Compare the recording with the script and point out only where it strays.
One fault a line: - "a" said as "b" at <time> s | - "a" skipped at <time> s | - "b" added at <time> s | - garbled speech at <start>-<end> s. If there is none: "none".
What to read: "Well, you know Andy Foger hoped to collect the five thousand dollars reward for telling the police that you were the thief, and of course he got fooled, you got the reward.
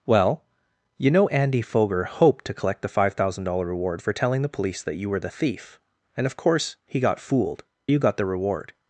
none